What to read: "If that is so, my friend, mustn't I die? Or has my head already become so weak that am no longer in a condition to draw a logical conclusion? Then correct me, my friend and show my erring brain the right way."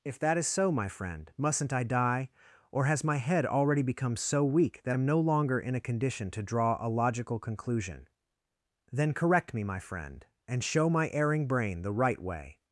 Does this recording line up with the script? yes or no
yes